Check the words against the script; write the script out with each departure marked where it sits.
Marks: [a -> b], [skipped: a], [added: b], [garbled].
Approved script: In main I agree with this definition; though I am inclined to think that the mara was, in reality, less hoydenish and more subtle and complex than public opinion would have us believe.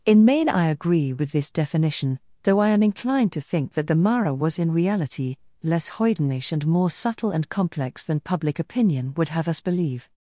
In main I agree with this definition; though I am inclined to think that the mara was, in reality, less hoydenish and more subtle and complex than public opinion would have us believe.